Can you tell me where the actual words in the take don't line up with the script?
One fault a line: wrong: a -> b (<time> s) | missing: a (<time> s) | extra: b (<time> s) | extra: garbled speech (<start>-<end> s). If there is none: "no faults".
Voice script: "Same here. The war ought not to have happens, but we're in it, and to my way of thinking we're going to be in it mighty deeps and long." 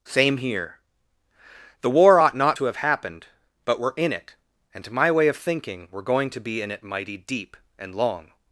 wrong: happens -> happened (2.8 s)
wrong: deeps -> deep (7.2 s)